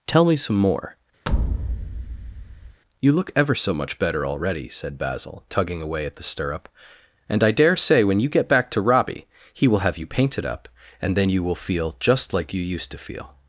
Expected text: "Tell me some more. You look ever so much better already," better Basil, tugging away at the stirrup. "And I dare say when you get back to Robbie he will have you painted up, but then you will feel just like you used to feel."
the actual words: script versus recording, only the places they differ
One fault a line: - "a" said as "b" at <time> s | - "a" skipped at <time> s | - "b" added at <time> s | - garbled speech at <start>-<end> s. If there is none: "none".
- "better" said as "said" at 4.7 s
- "but" said as "and" at 11.0 s